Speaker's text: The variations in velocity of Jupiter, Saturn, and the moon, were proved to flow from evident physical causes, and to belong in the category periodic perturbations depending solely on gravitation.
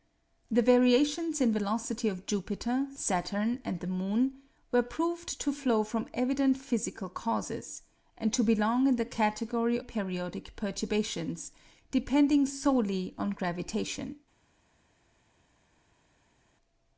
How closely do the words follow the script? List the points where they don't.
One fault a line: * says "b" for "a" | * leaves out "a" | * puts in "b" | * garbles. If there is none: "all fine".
all fine